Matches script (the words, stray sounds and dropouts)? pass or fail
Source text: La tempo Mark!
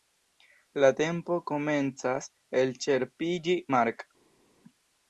fail